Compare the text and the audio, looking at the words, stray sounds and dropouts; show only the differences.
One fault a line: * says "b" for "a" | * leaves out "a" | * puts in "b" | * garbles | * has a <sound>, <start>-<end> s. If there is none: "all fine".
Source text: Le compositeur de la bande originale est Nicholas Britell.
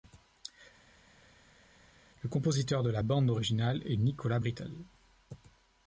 all fine